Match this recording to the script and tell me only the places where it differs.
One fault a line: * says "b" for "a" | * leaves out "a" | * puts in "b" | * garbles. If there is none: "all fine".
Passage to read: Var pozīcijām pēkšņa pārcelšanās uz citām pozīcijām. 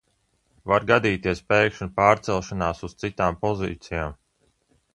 * says "gadīties" for "pozīcijām"